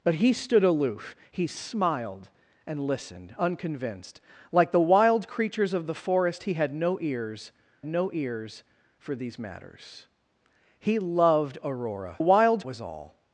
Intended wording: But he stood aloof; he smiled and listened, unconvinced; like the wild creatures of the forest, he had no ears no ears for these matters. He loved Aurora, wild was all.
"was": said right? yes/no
yes